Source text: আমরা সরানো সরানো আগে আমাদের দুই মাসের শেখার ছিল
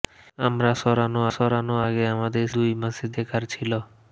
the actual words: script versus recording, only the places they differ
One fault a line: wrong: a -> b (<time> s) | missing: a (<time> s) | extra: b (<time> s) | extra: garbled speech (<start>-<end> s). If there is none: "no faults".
no faults